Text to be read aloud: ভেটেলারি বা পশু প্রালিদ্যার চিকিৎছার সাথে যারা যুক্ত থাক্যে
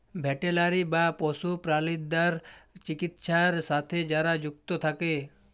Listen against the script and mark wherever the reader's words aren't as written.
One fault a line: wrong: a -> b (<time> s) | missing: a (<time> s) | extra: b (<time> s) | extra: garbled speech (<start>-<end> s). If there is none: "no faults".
no faults